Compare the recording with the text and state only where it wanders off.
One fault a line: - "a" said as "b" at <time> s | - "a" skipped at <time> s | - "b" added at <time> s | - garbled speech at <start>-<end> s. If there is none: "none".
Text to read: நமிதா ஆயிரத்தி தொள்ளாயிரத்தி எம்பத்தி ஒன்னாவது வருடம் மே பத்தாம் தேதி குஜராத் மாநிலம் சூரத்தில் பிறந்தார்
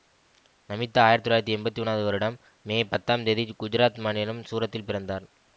none